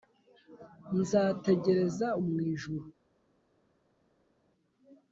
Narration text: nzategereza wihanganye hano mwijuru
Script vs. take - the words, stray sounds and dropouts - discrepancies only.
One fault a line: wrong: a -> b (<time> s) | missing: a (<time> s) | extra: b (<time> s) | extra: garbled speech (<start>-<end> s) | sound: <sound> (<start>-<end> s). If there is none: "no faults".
missing: wihanganye hano (2.1 s)